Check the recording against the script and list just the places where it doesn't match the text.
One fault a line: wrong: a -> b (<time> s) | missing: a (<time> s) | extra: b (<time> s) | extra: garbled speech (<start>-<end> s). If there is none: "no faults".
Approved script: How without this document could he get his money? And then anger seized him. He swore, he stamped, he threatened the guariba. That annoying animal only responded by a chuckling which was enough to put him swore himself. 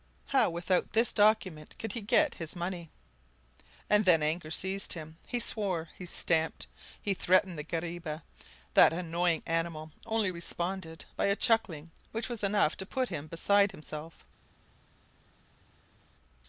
wrong: swore -> beside (13.3 s)